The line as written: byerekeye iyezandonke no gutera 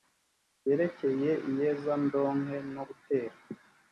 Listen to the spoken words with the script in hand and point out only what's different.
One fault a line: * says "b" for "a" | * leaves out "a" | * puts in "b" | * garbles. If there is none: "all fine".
all fine